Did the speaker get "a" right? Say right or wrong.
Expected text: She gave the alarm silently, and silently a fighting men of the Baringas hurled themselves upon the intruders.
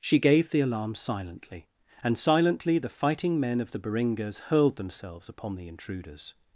wrong